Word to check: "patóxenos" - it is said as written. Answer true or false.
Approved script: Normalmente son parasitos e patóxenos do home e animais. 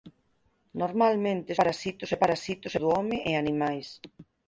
false